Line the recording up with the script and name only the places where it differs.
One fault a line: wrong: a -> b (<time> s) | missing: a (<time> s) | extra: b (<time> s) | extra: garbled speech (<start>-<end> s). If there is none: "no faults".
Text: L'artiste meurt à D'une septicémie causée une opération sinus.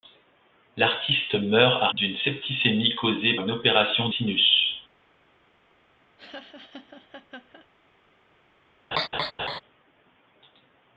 no faults